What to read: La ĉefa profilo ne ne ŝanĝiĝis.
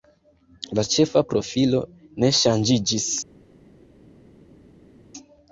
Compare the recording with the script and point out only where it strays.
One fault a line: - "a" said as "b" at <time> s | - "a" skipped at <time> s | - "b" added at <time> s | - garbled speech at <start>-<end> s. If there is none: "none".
- "ne" skipped at 2.3 s